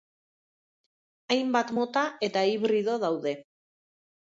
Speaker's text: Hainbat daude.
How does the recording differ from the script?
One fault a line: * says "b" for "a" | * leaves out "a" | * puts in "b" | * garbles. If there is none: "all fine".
* puts in "mota eta hibrido"